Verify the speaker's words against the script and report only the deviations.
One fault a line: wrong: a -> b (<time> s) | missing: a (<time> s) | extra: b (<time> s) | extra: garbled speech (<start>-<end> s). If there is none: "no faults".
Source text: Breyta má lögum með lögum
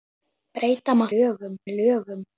no faults